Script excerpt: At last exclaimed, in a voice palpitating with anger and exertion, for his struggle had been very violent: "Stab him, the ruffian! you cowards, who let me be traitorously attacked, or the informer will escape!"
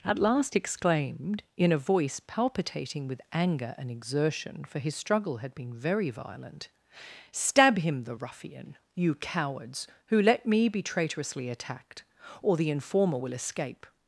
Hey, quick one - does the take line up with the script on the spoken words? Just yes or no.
yes